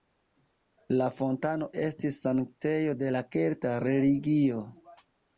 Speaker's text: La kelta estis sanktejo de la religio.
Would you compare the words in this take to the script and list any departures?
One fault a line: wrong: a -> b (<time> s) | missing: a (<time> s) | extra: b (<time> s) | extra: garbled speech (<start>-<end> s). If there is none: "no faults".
wrong: kelta -> fontano (1.2 s)
extra: kelta (3.4 s)